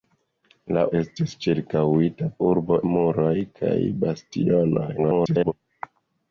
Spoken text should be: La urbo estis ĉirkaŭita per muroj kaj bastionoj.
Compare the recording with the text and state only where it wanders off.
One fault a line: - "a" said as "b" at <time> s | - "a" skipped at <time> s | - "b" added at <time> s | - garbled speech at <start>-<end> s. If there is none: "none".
- "urbo" skipped at 0.8 s
- "per" said as "urbo" at 2.5 s
- garbled speech at 5.0-5.5 s